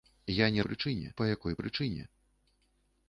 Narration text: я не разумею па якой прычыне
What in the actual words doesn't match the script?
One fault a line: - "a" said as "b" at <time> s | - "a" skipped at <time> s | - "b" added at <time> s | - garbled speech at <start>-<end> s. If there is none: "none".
- "разумею" said as "прычыне" at 0.7 s